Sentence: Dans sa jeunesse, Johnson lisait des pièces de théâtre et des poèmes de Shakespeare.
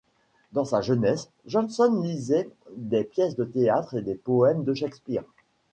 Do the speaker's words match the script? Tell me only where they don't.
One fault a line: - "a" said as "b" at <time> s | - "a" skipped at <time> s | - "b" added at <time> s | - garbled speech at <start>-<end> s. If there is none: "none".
none